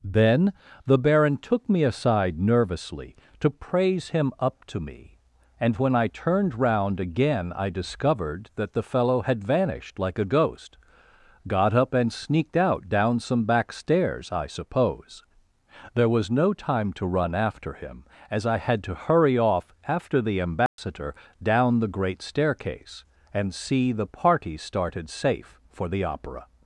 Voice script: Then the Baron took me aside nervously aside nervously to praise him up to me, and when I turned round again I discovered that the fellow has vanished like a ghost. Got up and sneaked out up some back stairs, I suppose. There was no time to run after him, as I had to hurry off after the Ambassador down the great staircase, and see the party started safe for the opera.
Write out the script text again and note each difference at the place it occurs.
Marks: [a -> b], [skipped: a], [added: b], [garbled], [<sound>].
Then the Baron took me aside nervously [skipped: aside nervously] to praise him up to me, and when I turned round again I discovered that the fellow [has -> had] vanished like a ghost. Got up and sneaked out [up -> down] some back stairs, I suppose. There was no time to run after him, as I had to hurry off after the Ambassador [dropout] down the great staircase, and see the party started safe for the opera.